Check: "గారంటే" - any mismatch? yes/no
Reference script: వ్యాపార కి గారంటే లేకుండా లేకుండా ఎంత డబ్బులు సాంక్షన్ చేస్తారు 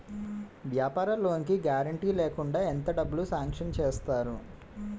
no